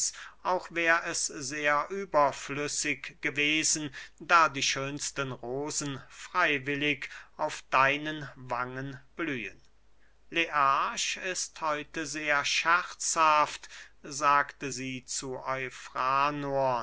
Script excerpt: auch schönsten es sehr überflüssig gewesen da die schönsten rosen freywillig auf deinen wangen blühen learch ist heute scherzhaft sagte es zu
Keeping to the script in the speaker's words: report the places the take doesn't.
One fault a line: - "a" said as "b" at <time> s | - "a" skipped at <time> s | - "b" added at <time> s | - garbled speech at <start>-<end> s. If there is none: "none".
- "schönsten" said as "wär" at 0.7 s
- "sehr" added at 12.1 s
- "es" said as "sie" at 14.7 s